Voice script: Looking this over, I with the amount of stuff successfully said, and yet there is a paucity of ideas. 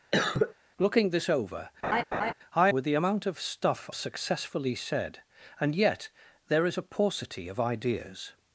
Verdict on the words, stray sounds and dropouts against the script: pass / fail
fail